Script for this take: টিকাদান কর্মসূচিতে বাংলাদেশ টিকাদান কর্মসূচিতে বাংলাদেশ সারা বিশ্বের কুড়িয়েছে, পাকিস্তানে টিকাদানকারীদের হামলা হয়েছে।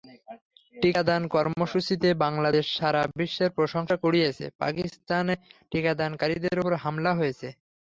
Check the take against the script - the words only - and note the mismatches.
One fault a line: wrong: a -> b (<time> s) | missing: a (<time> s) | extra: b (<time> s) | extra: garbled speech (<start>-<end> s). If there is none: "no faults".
missing: টিকাদান কর্মসূচিতে বাংলাদেশ (2.7 s)
extra: প্রশংসা (3.6 s)
extra: ওপর (6.6 s)